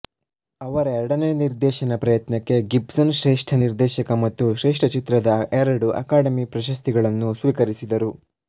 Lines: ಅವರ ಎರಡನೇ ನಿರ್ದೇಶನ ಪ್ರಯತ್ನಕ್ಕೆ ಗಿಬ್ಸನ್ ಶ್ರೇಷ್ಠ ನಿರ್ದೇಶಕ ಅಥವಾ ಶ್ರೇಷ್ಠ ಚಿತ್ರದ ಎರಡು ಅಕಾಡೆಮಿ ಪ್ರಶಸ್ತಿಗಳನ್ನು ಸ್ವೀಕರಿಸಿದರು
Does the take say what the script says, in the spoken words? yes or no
no